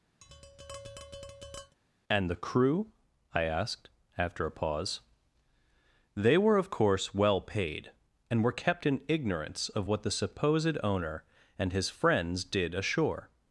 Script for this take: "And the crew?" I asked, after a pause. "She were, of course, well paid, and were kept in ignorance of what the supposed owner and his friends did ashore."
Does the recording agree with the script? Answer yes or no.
no